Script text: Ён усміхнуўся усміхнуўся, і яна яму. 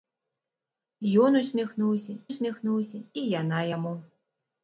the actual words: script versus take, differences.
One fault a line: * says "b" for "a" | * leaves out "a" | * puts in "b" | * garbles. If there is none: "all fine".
all fine